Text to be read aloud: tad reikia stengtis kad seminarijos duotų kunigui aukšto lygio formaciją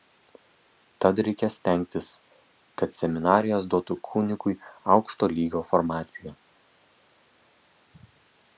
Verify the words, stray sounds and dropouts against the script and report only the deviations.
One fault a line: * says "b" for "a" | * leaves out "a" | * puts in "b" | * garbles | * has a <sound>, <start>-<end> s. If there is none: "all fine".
all fine